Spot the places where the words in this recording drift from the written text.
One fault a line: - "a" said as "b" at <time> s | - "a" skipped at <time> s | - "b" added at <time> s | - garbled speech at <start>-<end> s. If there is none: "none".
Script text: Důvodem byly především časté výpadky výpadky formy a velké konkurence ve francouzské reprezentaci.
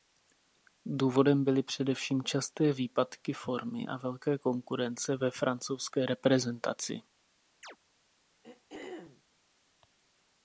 - "výpadky" skipped at 3.3 s